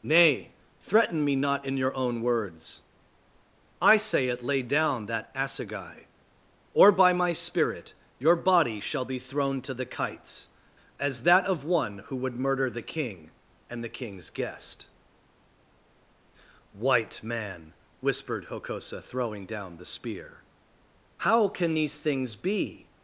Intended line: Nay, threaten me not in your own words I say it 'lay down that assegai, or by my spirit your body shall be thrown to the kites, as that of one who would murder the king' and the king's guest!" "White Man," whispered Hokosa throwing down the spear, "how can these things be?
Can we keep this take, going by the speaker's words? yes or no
yes